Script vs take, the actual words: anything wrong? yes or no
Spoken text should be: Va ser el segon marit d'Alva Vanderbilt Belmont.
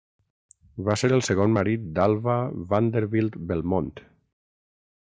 no